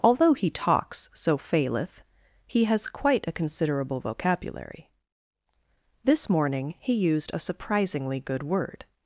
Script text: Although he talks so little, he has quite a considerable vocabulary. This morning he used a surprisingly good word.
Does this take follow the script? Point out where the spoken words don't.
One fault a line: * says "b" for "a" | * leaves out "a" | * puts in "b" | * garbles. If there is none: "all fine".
* says "faileth" for "little"